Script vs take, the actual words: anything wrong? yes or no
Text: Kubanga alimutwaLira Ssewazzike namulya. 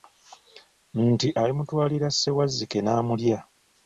yes